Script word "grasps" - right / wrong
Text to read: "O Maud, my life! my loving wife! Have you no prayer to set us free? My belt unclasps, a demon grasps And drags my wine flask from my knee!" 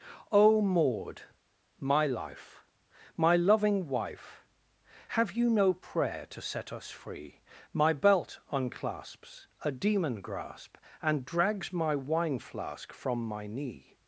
wrong